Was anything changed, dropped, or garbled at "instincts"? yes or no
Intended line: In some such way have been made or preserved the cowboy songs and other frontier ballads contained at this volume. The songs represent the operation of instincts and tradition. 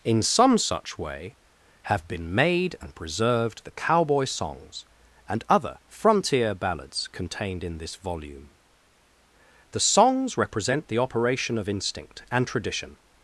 yes